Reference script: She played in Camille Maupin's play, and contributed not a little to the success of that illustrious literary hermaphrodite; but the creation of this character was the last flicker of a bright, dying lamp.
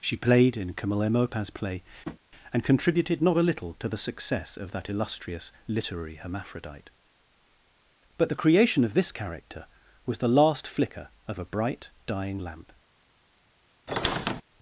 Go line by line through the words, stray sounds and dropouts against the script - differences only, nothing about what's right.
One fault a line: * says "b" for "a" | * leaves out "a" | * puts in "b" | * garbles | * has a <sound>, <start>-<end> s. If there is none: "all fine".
* has a tap, 2.0-2.2 s
* has a squeak, 13.9-14.4 s